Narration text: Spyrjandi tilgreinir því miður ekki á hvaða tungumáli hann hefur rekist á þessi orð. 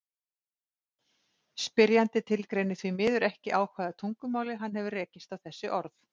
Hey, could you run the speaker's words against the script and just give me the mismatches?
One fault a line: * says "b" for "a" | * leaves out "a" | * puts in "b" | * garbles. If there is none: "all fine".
all fine